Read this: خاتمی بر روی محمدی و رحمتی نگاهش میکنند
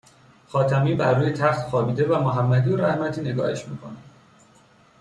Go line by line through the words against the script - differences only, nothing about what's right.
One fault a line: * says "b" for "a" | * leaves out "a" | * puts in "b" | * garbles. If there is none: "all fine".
* puts in "تخت خوابیده و"